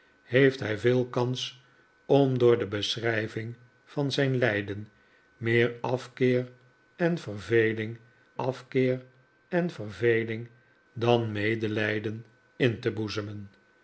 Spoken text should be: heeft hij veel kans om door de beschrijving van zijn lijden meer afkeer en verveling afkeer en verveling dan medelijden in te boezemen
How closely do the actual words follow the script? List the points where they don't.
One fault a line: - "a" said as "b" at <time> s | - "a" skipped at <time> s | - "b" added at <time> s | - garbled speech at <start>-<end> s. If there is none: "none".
none